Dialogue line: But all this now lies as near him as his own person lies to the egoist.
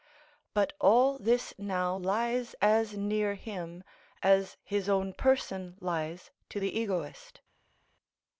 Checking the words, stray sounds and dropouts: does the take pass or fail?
pass